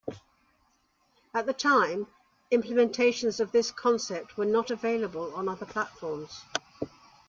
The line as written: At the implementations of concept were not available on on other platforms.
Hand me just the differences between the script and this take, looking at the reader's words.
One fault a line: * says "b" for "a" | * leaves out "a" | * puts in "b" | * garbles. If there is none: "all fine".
* puts in "time"
* puts in "this"
* leaves out "on"